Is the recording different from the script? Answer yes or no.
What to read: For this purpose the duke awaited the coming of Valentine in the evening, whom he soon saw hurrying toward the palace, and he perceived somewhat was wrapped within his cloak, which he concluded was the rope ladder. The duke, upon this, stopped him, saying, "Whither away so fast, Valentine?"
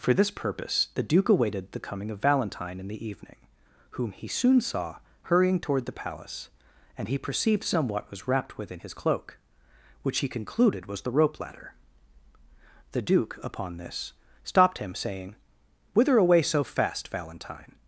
no